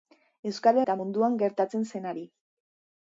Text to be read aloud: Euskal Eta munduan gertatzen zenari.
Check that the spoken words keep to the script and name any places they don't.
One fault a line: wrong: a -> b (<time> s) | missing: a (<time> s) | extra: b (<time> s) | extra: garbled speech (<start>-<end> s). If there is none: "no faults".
no faults